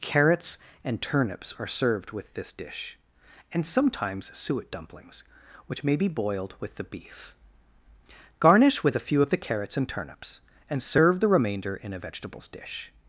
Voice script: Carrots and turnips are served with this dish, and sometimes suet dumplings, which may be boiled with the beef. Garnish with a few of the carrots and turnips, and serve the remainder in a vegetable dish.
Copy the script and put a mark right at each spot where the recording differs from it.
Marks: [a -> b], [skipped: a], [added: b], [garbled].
Carrots and turnips are served with this dish, and sometimes suet dumplings, which may be boiled with the beef. Garnish with a few of the carrots and turnips, and serve the remainder in a [vegetable -> vegetables] dish.